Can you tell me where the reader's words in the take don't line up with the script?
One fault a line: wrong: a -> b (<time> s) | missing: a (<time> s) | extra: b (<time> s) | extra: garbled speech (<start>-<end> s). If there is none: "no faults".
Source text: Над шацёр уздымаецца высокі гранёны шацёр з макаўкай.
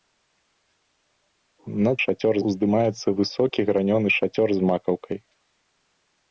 no faults